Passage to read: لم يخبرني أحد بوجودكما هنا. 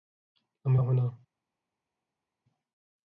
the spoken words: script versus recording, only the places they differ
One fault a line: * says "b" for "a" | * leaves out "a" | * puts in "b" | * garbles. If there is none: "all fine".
* leaves out "يخبرني أحد بوجودكما"